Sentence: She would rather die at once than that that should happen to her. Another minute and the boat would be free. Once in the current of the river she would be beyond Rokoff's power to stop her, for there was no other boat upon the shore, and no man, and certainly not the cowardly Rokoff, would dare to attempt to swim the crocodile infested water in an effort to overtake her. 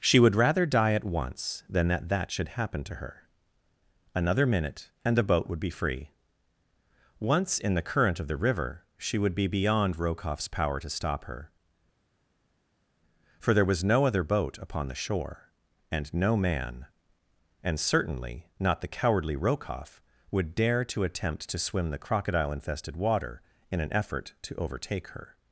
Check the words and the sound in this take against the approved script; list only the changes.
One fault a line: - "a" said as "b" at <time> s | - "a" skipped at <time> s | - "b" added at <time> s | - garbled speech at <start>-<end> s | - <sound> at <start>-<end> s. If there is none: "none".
none